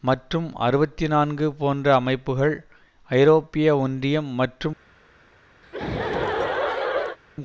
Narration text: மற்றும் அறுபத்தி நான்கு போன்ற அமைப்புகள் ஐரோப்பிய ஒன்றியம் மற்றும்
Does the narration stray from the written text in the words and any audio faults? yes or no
yes